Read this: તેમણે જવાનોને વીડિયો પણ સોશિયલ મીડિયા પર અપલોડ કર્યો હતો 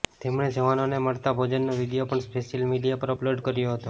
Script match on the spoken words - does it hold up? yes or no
no